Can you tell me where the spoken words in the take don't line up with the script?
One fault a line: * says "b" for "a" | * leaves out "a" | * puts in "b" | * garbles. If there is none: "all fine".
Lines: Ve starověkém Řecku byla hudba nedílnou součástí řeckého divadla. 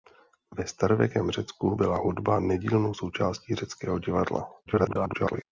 * garbles